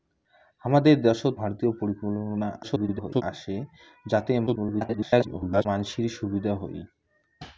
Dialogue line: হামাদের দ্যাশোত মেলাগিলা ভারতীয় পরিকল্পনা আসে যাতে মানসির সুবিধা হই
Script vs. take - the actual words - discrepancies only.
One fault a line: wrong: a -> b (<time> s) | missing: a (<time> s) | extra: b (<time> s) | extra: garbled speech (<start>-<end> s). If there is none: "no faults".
missing: মেলাগিলা (1.4 s)
extra: garbled speech (2.6-3.2 s)
extra: garbled speech (4.5-5.7 s)